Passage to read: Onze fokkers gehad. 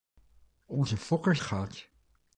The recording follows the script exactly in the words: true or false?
true